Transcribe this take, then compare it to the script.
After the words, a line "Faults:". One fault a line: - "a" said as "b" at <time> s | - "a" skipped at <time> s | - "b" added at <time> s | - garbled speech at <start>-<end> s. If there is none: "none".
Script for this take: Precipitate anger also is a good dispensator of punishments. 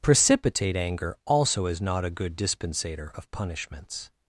Precipitate anger also is not a good dispensator of punishments.
Faults:
- "not" added at 1.8 s